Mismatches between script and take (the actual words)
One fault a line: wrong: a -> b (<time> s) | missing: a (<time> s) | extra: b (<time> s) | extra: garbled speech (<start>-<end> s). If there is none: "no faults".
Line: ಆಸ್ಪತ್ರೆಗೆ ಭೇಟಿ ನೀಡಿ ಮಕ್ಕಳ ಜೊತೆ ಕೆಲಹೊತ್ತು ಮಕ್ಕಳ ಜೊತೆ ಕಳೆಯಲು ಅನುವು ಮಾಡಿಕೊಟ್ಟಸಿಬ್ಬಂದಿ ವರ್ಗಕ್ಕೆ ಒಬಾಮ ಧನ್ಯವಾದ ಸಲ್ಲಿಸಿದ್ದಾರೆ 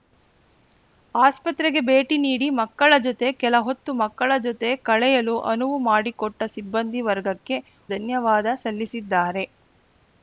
missing: ಒಬಾಮ (7.6 s)